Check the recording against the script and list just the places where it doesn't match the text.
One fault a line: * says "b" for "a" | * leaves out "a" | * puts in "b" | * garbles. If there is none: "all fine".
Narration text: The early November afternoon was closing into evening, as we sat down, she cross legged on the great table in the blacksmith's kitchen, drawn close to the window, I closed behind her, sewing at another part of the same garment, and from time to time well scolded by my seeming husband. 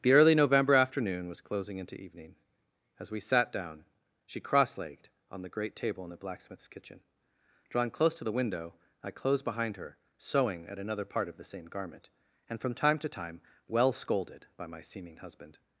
all fine